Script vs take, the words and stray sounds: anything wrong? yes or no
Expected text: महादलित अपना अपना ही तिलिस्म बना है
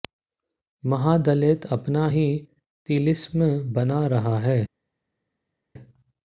yes